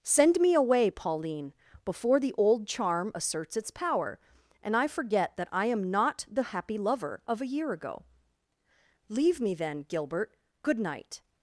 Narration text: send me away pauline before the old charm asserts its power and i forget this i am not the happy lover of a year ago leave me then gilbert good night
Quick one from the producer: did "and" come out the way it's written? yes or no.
yes